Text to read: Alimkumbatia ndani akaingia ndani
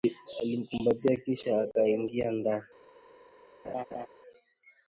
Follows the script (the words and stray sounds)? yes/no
no